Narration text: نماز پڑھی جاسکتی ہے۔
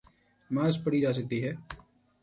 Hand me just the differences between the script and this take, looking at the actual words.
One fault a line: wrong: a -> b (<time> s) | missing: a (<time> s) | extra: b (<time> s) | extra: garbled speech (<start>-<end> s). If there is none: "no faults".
no faults